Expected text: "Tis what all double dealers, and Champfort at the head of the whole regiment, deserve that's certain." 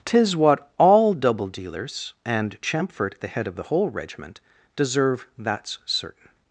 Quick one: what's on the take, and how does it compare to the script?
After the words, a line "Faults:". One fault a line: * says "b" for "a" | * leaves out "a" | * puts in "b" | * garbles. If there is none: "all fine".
"Tis what all double dealers, and Champfort the head of the whole regiment, deserve that's certain."
Faults:
* leaves out "at"